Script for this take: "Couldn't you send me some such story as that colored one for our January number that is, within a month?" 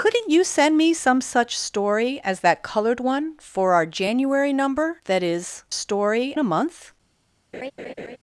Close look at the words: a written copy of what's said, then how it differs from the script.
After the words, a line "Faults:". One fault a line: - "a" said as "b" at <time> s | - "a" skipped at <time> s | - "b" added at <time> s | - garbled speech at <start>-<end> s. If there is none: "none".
"Couldn't you send me some such story as that colored one for our January number that is, story a month?"
Faults:
- "within" said as "story" at 5.7 s